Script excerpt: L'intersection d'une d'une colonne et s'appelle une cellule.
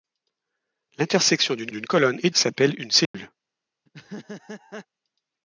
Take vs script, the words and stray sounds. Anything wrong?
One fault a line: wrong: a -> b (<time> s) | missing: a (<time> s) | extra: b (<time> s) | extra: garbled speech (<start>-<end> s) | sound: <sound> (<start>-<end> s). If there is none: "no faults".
sound: dropout (3.1-3.1 s)
sound: laugh (3.9-4.9 s)